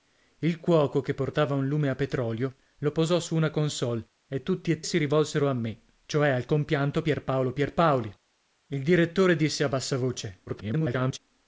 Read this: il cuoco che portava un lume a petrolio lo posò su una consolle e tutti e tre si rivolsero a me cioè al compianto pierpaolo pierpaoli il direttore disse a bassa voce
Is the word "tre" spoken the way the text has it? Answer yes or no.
no